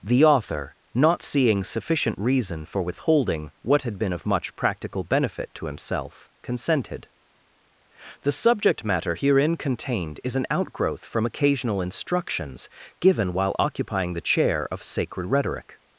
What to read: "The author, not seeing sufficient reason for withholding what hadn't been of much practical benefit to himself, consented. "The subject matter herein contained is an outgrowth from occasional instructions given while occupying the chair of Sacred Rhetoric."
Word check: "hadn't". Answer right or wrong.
wrong